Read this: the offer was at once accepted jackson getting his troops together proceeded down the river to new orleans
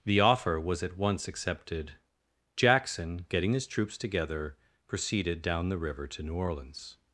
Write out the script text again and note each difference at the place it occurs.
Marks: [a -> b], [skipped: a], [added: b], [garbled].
the offer was at once accepted jackson getting his troops together proceeded down the river to new orleans